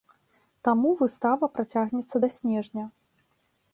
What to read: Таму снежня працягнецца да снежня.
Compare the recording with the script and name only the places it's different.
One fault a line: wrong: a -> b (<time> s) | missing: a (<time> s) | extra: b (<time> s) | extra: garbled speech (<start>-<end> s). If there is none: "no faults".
wrong: снежня -> выстава (1.0 s)